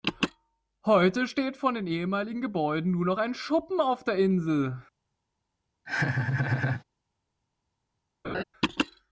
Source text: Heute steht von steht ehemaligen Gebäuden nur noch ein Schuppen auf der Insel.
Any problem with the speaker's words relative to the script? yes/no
yes